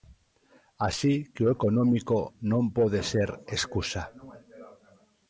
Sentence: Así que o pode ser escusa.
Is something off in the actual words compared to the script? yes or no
yes